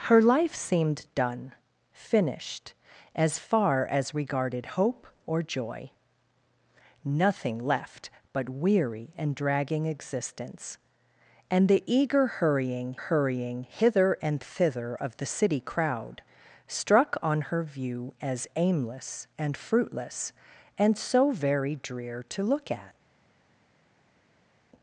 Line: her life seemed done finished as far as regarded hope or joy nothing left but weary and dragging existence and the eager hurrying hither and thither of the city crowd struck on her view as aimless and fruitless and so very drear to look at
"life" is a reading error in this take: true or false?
false